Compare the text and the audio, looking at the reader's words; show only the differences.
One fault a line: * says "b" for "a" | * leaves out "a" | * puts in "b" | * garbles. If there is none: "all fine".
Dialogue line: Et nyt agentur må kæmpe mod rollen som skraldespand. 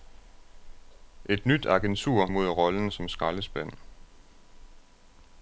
* leaves out "må kæmpe"